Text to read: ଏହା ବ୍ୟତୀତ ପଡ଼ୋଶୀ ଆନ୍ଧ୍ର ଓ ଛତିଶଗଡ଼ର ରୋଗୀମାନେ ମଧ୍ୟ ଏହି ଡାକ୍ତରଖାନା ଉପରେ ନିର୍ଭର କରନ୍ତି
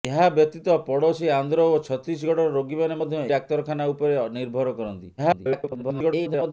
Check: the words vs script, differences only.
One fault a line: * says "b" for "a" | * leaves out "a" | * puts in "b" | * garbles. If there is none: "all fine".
* leaves out "ଏହି"
* garbles